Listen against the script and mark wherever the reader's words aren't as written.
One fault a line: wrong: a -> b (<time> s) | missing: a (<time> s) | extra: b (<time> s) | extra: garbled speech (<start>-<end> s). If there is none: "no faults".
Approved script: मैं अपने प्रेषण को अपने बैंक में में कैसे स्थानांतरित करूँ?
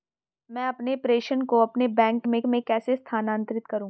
no faults